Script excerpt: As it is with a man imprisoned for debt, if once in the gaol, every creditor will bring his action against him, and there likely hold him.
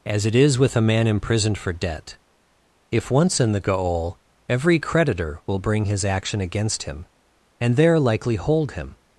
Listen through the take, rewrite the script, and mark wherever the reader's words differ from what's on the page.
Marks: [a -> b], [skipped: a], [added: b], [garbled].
As it is with a man imprisoned for debt, if once in the gaol, every creditor will bring his action against him, and there likely hold him.